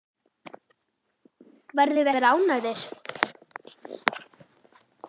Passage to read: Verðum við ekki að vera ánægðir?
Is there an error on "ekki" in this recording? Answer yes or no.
yes